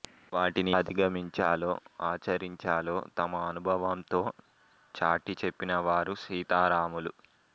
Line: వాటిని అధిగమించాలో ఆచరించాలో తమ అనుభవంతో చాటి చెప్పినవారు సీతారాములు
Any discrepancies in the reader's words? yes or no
no